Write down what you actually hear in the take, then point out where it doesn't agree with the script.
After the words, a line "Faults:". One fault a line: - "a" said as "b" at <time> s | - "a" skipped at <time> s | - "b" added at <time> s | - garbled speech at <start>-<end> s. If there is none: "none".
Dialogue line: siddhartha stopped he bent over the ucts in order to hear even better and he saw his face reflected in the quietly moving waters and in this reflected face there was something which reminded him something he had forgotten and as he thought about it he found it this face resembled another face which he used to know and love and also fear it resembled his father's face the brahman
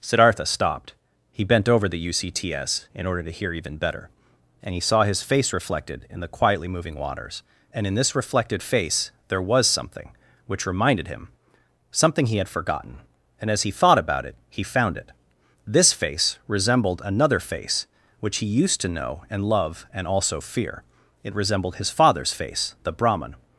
siddhartha stopped he bent over the ucts in order to hear even better and he saw his face reflected in the quietly moving waters and in this reflected face there was something which reminded him something he had forgotten and as he thought about it he found it this face resembled another face which he used to know and love and also fear it resembled his father's face the brahman
Faults:
none